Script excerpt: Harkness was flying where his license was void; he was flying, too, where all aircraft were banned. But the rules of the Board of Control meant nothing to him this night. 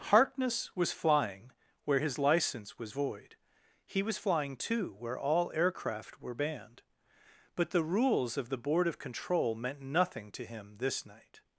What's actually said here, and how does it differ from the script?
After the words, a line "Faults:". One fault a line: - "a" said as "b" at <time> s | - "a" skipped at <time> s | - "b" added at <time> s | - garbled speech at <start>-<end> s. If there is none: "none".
Harkness was flying where his license was void; he was flying, too, where all aircraft were banned. But the rules of the Board of Control meant nothing to him this night.
Faults:
none